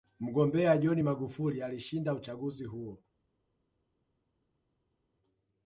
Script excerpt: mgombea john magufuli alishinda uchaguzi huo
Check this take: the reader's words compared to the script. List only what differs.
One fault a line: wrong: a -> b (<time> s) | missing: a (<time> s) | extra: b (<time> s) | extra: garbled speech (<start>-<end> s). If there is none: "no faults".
no faults